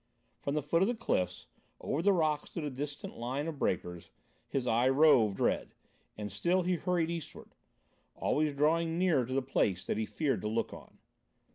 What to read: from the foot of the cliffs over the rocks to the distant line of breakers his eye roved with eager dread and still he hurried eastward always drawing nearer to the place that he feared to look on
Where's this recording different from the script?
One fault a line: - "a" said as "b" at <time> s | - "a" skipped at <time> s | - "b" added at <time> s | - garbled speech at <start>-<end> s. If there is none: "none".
- "with eager" skipped at 5.4 s